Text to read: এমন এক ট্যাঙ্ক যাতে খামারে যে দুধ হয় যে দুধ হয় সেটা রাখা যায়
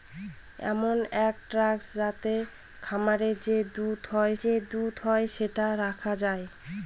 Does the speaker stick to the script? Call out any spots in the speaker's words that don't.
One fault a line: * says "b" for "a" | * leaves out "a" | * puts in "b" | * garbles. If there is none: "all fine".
all fine